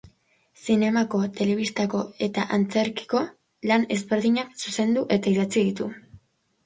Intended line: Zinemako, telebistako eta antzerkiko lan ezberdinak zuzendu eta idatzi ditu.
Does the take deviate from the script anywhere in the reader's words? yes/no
no